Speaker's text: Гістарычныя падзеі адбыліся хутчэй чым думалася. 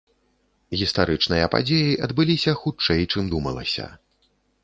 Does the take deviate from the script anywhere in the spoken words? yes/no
no